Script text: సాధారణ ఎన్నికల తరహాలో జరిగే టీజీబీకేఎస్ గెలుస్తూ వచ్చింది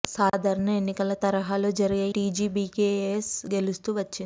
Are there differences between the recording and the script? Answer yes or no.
no